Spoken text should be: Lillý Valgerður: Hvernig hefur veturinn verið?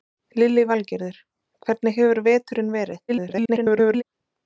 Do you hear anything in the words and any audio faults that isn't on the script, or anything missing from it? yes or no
yes